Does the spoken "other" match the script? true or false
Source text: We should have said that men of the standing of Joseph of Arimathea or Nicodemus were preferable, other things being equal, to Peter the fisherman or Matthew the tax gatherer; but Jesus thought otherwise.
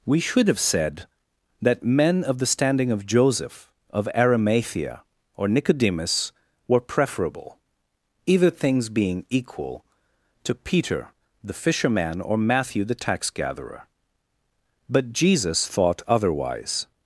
false